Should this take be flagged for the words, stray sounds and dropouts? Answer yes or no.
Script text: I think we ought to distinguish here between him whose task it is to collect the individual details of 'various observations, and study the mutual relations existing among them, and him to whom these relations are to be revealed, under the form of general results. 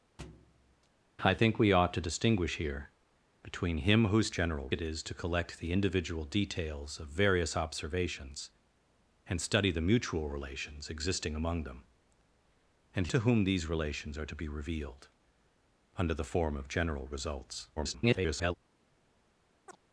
yes